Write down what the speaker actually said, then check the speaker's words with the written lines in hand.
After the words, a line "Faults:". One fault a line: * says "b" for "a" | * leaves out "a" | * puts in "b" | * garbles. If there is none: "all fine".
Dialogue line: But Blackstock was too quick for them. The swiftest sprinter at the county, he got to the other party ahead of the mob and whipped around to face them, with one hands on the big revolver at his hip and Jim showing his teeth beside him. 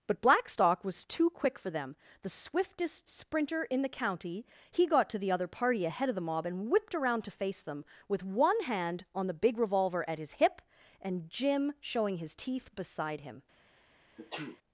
But Blackstock was too quick for them. The swiftest sprinter in the county, he got to the other party ahead of the mob and whipped around to face them, with one hand on the big revolver at his hip and Jim showing his teeth beside him.
Faults:
* says "in" for "at"
* says "hand" for "hands"